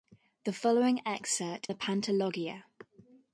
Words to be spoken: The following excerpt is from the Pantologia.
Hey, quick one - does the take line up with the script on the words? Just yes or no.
no